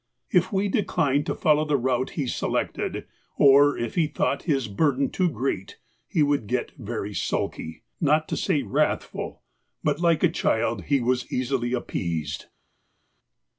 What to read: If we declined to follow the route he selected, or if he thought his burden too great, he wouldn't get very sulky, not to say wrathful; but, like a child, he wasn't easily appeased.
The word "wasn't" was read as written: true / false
false